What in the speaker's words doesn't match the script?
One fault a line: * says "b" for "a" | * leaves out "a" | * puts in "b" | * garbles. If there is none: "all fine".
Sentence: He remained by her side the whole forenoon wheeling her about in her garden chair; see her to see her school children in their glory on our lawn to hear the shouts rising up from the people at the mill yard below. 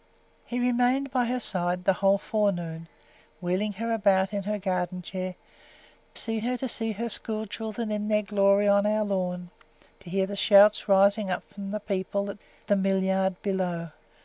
all fine